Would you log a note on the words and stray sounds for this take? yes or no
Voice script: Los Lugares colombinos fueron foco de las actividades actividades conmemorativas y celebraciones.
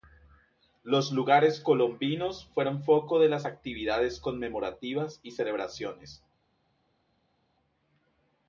yes